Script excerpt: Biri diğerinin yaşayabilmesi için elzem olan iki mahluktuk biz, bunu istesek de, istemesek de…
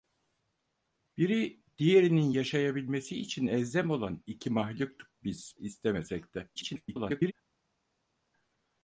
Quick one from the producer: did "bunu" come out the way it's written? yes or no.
no